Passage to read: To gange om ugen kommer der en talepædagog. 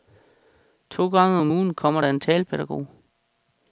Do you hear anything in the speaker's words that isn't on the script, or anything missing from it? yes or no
no